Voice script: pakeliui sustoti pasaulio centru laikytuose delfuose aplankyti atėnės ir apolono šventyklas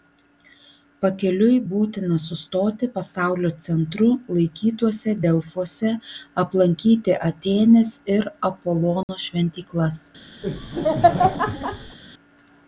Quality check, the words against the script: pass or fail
fail